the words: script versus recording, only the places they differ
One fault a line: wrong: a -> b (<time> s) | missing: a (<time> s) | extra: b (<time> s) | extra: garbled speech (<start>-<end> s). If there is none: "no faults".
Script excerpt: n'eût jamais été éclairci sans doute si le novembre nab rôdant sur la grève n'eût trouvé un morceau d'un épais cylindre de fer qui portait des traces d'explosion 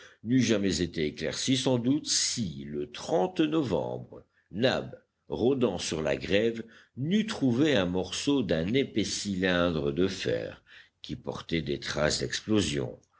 no faults